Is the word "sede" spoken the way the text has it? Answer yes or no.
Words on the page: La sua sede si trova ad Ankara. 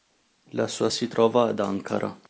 no